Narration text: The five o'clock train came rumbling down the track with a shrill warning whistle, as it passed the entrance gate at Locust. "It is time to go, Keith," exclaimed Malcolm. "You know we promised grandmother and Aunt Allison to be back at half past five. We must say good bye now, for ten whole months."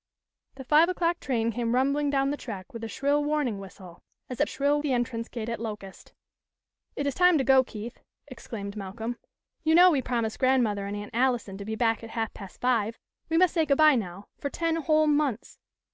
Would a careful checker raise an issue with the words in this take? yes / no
yes